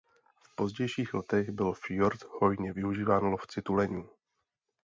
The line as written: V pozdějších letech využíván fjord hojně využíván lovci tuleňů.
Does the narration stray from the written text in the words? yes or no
yes